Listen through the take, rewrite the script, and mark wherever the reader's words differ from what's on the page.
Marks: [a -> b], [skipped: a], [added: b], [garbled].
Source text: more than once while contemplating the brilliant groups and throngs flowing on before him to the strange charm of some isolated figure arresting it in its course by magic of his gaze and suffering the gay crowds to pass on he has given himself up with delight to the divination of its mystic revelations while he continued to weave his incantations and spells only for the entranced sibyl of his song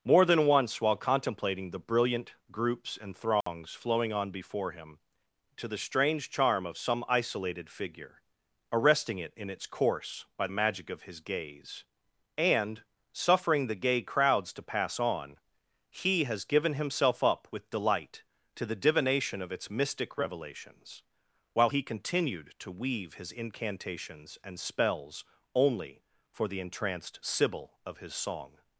more than once while contemplating the brilliant groups and throngs flowing on before him to the strange charm of some isolated figure arresting it in its course by magic of his gaze and suffering the gay crowds to pass on he has given himself up with delight to the divination of its mystic revelations while he continued to weave his incantations and spells only for the entranced sibyl of his song